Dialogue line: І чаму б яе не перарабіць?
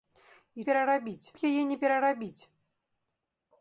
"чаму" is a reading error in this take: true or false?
true